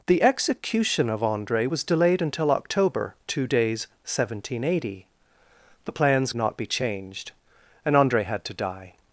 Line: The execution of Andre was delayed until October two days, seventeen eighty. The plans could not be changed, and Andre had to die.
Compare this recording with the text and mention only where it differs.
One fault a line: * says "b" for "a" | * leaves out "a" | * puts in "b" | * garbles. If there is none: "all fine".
* leaves out "could"